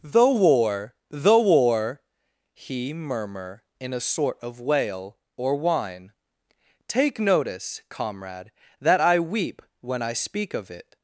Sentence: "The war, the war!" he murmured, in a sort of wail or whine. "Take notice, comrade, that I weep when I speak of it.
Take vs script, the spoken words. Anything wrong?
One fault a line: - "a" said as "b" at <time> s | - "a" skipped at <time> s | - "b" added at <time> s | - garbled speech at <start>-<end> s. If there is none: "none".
- "murmured" said as "murmur" at 2.9 s